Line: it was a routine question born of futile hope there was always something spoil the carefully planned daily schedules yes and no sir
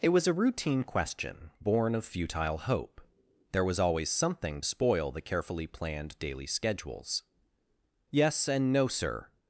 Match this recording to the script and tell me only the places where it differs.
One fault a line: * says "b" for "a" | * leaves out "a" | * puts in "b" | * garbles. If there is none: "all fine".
all fine